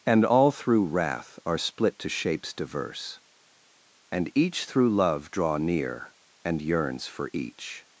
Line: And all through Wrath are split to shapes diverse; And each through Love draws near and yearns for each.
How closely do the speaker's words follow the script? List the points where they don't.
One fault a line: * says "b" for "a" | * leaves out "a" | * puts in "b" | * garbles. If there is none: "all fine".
* says "draw" for "draws"